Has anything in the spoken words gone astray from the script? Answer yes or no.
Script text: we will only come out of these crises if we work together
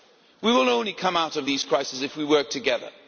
no